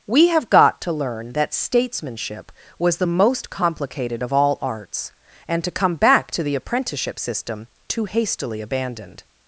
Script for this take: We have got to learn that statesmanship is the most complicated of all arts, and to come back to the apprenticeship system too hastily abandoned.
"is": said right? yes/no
no